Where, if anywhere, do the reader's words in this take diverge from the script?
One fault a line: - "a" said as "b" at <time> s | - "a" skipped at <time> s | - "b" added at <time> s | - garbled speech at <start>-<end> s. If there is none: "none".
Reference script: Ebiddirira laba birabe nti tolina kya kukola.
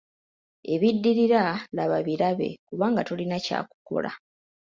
- "nti" said as "kubanga" at 2.7 s